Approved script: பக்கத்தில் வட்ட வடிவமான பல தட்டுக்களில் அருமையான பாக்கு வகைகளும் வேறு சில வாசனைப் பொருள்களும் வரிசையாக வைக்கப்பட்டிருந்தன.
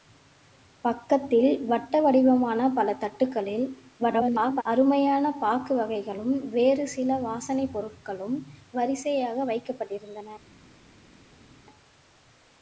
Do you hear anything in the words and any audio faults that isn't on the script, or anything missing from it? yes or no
yes